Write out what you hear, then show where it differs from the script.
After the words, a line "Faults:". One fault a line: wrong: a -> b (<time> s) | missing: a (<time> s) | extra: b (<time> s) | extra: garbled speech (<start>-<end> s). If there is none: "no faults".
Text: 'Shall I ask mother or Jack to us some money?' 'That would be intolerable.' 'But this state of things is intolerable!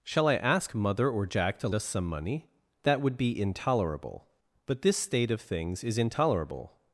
'Shall I ask mother or Jack to us some money?' 'That would be intolerable.' 'But this state of things is intolerable!
Faults:
no faults